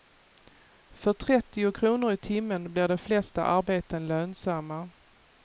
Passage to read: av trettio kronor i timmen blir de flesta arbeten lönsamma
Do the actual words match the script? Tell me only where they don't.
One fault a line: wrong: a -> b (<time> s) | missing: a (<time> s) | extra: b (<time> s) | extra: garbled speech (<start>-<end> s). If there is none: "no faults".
wrong: av -> för (0.9 s)